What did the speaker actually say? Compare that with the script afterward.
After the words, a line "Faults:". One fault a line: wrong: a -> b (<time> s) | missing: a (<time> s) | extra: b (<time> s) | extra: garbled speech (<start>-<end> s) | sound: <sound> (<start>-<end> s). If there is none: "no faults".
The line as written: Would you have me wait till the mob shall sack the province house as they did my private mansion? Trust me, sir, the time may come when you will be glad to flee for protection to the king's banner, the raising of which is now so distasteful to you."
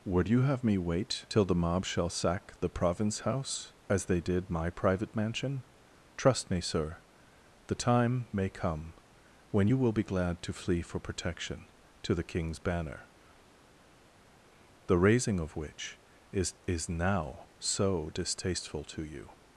Would you have me wait till the mob shall sack the province house as they did my private mansion? Trust me, sir, the time may come when you will be glad to flee for protection to the king's banner, the raising of which is is now so distasteful to you."
Faults:
extra: is (16.7 s)